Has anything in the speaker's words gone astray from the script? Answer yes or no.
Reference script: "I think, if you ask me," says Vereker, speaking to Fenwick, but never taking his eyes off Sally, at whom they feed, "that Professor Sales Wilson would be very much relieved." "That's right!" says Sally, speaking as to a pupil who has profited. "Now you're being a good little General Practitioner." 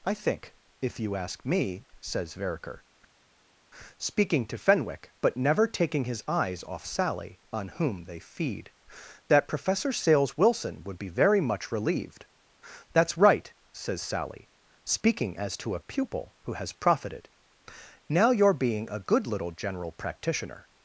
yes